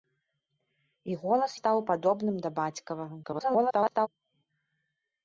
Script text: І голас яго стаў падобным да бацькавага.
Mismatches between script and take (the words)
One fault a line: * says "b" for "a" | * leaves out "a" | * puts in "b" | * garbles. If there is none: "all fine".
* leaves out "яго"
* garbles